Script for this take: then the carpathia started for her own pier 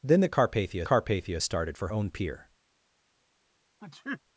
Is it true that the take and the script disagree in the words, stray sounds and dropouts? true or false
true